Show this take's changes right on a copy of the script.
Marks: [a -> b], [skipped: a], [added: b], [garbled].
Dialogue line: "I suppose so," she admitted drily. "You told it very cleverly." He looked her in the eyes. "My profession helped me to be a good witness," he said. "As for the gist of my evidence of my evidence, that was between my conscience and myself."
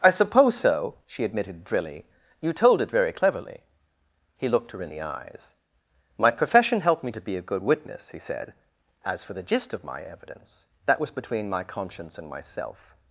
"I suppose so," she admitted drily. "You told it very cleverly." He looked her in the eyes. "My profession helped me to be a good witness," he said. "As for the gist of my evidence [skipped: of my evidence,] that was between my conscience and myself."